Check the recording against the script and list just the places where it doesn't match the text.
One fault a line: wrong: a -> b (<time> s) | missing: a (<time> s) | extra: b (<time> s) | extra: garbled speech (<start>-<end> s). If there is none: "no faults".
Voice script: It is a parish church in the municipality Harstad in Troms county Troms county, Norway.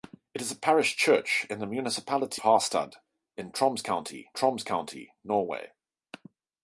no faults